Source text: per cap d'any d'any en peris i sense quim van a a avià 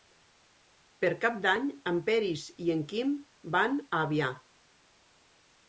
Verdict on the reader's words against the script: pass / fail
fail